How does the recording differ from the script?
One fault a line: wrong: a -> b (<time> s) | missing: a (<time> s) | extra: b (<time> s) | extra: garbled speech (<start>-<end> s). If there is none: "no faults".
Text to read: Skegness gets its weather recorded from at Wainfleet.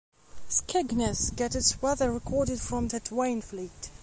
no faults